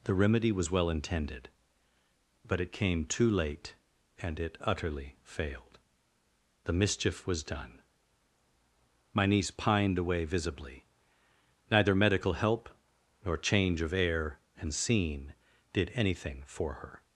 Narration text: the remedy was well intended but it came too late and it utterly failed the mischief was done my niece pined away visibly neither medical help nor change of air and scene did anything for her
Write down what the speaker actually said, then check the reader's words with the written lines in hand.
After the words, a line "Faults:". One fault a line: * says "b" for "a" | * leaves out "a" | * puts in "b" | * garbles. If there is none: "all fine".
the remedy was well intended but it came too late and it utterly failed the mischief was done my niece pined away visibly neither medical help nor change of air and scene did anything for her
Faults:
all fine